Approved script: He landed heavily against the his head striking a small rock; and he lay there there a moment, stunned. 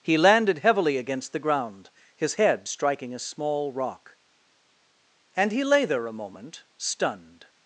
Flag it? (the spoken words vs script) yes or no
yes